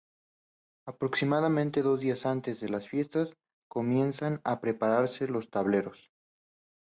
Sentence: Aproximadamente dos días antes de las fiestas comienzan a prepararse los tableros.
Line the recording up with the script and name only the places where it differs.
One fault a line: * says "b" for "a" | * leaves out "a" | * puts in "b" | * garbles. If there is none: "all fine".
all fine